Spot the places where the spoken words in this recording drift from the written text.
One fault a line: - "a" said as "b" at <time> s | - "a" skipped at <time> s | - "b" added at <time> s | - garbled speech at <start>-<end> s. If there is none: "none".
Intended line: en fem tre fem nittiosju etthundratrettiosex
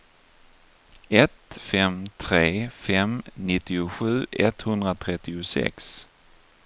- "en" said as "ett" at 1.1 s